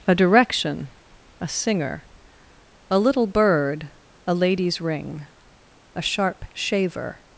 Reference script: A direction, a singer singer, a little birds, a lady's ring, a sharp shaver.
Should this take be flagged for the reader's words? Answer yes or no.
yes